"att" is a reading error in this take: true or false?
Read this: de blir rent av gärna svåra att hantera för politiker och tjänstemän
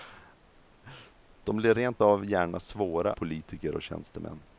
true